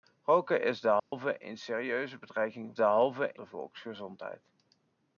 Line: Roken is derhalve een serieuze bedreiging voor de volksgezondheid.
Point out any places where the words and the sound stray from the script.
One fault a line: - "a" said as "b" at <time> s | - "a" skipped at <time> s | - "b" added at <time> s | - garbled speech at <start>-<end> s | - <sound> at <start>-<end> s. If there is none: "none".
- dropout at 1.0-1.1 s
- "voor" said as "derhalve" at 2.8 s